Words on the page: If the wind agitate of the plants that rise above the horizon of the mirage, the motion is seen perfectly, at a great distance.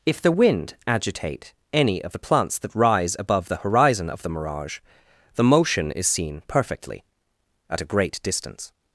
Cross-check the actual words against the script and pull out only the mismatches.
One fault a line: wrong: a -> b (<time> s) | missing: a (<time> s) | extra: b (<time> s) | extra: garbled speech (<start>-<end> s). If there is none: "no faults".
extra: any (1.7 s)